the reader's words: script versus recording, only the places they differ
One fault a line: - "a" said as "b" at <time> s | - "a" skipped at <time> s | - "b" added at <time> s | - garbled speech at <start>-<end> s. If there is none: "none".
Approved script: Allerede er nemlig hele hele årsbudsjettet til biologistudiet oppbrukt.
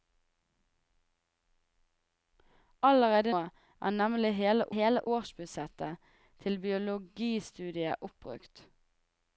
none